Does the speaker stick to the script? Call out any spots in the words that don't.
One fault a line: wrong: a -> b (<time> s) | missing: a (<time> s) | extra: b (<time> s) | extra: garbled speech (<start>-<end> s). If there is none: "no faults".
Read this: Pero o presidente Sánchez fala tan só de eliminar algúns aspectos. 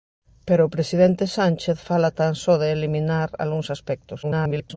extra: garbled speech (4.2-4.8 s)